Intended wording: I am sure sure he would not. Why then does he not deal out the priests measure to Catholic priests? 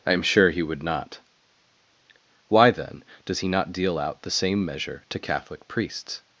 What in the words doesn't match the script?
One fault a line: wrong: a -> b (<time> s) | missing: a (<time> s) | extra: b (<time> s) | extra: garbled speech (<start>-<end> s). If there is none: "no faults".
missing: sure (0.5 s)
wrong: priests -> same (4.3 s)